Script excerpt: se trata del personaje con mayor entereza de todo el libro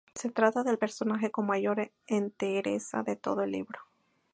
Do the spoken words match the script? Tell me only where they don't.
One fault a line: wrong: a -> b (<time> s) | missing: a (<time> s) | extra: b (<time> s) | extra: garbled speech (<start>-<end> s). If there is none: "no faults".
no faults